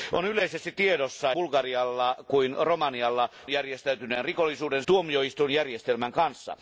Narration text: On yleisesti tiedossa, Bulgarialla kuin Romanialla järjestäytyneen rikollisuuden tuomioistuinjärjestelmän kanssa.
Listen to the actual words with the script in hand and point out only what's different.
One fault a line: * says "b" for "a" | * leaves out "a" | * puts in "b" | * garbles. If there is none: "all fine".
all fine